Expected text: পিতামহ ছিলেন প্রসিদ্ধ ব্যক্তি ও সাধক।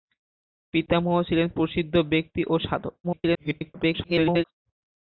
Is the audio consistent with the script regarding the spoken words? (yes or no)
no